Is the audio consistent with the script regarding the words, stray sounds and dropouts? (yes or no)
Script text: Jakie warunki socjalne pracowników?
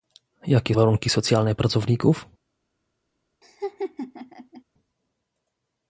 no